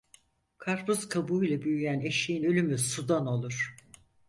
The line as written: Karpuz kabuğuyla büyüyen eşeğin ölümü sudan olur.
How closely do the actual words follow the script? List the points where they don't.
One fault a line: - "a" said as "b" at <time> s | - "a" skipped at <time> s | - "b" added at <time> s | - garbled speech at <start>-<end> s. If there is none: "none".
none